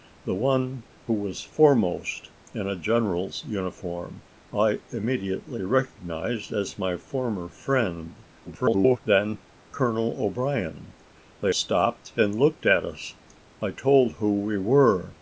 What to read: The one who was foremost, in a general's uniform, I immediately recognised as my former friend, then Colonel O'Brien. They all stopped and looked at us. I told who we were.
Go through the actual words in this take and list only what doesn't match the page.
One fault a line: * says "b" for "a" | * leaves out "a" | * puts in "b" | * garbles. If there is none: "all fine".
* garbles
* leaves out "all"